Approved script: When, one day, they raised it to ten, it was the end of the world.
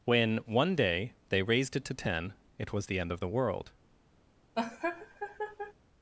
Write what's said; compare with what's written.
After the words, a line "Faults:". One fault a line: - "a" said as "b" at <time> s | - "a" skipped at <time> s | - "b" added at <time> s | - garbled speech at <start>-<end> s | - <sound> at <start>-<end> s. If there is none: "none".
When, one day, they raised it to ten, it was the end of the world.
Faults:
- laugh at 4.5-5.7 s